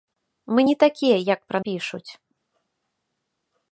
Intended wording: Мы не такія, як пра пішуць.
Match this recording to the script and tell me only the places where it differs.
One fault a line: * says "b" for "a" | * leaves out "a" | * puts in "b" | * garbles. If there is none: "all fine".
all fine